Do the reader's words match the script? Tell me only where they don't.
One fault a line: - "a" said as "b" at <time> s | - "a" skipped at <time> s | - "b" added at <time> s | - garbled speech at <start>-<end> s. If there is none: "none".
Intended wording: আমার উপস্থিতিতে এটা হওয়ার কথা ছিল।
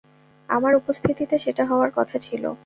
- "এটা" said as "সেটা" at 1.4 s